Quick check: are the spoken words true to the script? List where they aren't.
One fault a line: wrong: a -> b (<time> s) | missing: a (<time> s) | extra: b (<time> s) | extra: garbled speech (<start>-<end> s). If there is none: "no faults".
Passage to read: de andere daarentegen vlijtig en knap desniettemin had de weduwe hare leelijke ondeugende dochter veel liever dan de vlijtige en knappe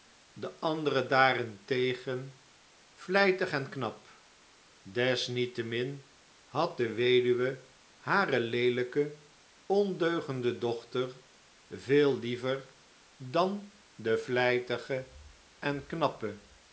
no faults